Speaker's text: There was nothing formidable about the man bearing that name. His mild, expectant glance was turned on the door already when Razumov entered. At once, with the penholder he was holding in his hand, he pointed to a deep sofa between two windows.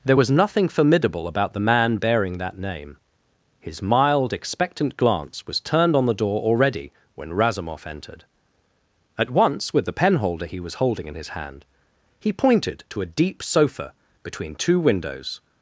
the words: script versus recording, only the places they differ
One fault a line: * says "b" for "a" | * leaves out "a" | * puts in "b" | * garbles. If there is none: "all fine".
all fine